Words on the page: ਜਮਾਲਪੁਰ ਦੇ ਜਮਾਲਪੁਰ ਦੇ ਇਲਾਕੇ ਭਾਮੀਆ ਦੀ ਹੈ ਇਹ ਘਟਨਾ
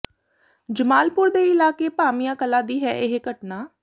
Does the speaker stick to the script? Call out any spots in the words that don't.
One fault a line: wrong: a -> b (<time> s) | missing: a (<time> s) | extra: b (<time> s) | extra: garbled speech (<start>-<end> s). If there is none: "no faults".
missing: ਜਮਾਲਪੁਰ ਦੇ (1.4 s)
extra: ਕਲਾਂ (2.4 s)